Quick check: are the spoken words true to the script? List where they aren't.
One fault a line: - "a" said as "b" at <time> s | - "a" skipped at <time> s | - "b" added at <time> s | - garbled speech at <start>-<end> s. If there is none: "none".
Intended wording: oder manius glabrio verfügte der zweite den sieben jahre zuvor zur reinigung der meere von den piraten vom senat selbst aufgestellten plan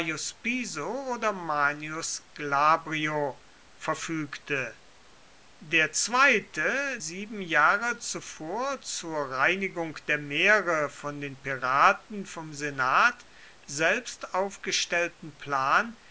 - "den" skipped at 7.0 s